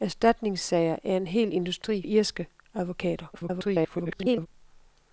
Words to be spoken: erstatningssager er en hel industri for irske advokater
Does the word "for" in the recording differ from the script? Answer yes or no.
yes